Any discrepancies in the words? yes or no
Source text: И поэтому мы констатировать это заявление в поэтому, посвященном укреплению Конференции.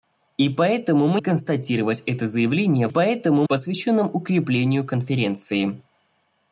no